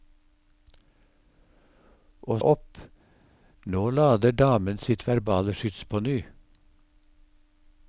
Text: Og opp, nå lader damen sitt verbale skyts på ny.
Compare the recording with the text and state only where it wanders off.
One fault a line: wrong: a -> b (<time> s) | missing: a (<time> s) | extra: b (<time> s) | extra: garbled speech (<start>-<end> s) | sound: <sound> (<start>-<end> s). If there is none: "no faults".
no faults